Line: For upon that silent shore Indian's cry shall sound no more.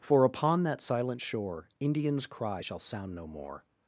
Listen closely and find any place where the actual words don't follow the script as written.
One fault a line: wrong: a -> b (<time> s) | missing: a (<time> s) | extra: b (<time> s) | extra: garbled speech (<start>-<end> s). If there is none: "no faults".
no faults